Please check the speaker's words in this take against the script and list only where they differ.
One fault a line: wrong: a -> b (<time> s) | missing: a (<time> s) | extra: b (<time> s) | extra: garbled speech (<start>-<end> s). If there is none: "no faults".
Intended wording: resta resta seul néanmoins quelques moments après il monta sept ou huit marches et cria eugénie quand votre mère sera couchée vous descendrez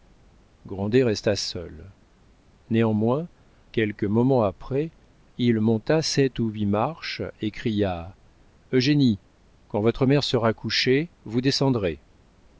missing: resta (1.4 s)